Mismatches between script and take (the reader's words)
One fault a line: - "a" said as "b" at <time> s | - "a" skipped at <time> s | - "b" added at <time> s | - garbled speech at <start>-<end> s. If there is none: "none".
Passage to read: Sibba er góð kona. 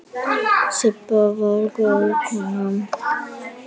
- "er" said as "var" at 1.4 s